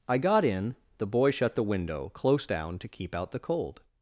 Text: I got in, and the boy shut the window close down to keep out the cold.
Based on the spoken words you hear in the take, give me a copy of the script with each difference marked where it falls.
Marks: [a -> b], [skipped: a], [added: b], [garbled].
I got in, [skipped: and] the boy shut the window close down to keep out the cold.